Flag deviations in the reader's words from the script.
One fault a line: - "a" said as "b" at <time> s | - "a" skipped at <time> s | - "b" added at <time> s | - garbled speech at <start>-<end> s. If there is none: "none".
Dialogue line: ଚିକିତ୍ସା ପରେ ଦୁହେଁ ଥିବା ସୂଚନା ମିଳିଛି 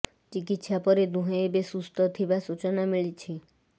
- "ଏବେ ସୁସ୍ଥ" added at 1.4 s